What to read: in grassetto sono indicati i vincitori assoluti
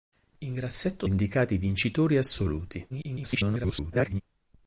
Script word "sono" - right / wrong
wrong